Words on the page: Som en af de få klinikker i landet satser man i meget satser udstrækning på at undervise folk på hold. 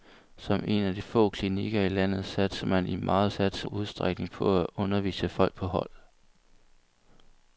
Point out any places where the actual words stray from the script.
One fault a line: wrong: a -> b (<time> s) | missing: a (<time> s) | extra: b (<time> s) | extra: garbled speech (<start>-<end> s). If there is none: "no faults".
no faults